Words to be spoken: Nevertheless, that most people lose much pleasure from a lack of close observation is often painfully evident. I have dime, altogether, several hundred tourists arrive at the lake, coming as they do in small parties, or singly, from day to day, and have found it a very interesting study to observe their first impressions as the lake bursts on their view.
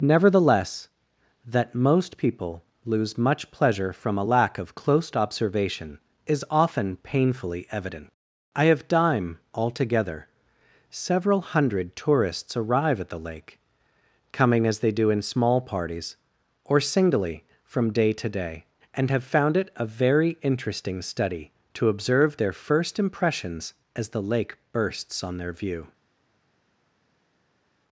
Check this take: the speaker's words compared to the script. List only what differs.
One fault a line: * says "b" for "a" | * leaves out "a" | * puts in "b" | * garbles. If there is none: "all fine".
all fine